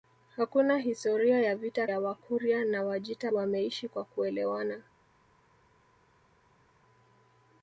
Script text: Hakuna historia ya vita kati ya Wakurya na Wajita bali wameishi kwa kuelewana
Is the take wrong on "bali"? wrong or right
wrong